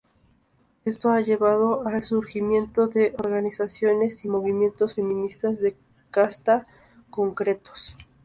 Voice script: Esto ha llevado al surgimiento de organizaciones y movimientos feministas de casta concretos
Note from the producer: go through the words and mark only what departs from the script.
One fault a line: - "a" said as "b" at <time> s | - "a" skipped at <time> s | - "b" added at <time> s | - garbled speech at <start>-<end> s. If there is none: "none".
none